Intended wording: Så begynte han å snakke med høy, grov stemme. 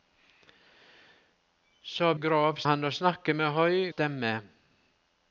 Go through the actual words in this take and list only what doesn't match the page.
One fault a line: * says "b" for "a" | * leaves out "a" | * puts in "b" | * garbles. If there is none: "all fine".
* says "grov" for "begynte"
* leaves out "grov"